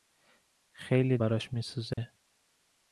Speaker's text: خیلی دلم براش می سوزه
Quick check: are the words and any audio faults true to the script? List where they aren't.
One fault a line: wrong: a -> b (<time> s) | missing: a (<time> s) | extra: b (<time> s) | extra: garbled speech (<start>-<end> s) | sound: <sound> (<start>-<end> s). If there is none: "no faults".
missing: دلم (1.2 s)
sound: dropout (1.9-2.0 s)